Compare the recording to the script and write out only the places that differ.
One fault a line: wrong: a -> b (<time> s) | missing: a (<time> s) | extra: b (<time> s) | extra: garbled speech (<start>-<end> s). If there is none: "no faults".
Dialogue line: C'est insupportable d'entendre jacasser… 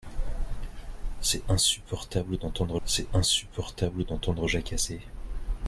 extra: c'est insupportable d'entendre (2.9 s)